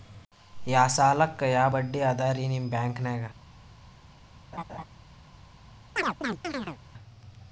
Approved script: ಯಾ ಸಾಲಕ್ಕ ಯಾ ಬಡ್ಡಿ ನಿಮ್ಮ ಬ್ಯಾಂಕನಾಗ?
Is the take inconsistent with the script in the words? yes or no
yes